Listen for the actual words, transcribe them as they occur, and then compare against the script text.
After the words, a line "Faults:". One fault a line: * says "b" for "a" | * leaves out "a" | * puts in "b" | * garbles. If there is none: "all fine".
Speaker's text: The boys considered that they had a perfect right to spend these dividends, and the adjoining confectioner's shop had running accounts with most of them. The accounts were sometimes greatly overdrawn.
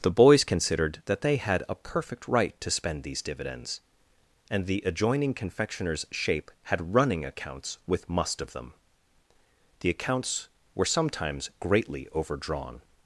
The boys considered that they had a perfect right to spend these dividends, and the adjoining confectioner's shape had running accounts with must of them. The accounts were sometimes greatly overdrawn.
Faults:
* says "shape" for "shop"
* says "must" for "most"